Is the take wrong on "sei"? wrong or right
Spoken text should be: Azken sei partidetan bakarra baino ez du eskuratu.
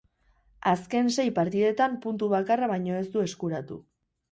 right